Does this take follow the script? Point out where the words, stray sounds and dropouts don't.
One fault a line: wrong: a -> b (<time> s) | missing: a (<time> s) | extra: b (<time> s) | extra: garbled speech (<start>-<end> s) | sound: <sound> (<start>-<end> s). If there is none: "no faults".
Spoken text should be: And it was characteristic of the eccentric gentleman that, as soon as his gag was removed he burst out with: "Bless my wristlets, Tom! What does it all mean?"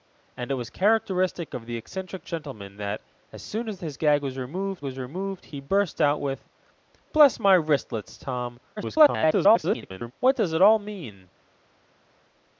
extra: was removed (4.8 s)
extra: garbled speech (8.8-10.1 s)